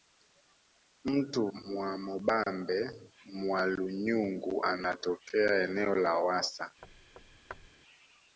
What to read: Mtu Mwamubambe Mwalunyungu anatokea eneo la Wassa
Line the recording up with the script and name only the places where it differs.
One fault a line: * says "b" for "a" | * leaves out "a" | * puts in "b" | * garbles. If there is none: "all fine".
all fine